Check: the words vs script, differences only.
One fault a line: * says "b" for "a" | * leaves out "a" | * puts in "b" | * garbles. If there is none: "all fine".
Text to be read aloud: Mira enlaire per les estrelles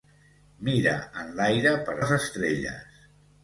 all fine